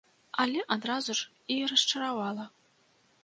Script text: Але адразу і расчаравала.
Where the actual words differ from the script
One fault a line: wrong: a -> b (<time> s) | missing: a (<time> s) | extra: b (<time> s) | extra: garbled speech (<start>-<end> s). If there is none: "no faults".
extra: ж (1.2 s)